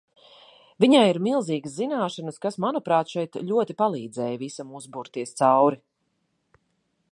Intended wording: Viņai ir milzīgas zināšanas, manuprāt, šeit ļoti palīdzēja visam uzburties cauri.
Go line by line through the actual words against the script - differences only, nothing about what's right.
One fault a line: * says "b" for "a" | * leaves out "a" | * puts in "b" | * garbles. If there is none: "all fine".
* puts in "kas"